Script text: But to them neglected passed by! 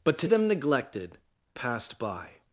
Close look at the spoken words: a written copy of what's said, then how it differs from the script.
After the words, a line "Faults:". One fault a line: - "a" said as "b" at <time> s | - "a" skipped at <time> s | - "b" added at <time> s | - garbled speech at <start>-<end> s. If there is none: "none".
But to them neglected passed by!
Faults:
none